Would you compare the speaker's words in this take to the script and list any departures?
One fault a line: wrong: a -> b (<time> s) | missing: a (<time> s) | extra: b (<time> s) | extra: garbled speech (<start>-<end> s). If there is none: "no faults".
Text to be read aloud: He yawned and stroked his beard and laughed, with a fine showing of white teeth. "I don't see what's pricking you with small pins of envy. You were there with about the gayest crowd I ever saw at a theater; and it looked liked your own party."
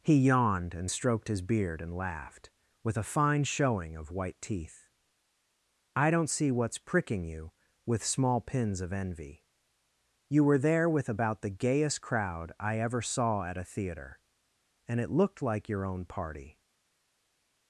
wrong: liked -> like (15.4 s)